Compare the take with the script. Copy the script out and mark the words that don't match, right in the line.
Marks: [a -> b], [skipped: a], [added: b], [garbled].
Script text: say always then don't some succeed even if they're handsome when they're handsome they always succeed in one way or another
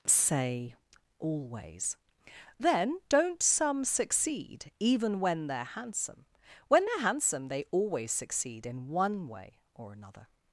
say always then don't some succeed even [if -> when] they're handsome when they're handsome they always succeed in one way or another